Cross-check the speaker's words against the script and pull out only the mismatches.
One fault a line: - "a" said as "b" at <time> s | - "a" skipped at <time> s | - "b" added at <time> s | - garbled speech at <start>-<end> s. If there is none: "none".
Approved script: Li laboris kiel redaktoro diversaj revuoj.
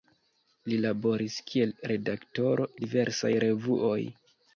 none